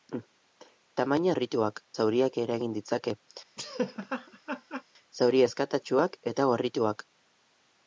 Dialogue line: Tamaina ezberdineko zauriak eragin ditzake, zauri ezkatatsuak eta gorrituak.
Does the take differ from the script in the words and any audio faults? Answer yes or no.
yes